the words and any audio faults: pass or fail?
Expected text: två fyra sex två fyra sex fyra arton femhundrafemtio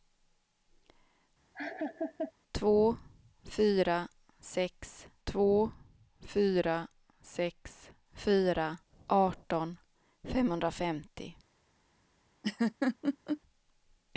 fail